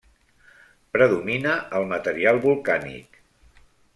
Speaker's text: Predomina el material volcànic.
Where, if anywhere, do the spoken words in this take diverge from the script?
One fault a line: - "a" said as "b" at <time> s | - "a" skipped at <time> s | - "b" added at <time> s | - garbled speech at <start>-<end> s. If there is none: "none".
none